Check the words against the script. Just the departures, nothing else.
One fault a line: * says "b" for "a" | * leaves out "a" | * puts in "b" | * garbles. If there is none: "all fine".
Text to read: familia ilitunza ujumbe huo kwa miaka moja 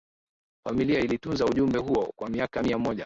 * puts in "mia"